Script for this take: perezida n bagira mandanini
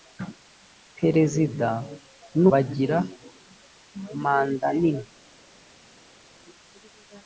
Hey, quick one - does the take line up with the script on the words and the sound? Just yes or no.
yes